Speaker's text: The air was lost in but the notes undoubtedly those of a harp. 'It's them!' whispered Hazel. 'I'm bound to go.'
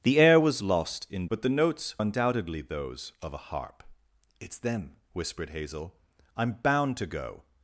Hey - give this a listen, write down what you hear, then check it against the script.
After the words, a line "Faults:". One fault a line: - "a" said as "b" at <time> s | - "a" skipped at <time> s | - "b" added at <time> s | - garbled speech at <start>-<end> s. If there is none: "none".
The air was lost in but the notes undoubtedly those of a harp. 'It's them!' whispered Hazel. 'I'm bound to go.'
Faults:
none